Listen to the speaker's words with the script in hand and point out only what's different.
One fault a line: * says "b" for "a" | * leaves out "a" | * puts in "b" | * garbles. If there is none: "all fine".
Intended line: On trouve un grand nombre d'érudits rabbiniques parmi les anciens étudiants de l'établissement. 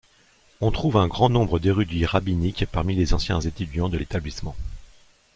all fine